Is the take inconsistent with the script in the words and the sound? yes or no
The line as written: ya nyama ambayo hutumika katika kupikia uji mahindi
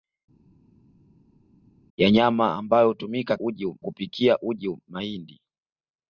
yes